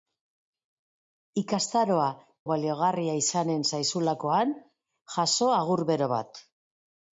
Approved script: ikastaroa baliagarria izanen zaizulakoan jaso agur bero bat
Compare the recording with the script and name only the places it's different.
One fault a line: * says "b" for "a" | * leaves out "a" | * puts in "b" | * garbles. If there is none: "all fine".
all fine